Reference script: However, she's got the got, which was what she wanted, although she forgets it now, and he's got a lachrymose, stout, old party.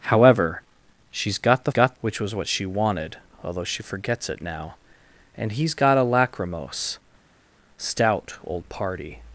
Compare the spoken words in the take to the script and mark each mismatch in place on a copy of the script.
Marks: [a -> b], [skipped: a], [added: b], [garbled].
However, she's got the got, which was what she wanted, although she forgets it now, and he's got a lachrymose, stout, old party.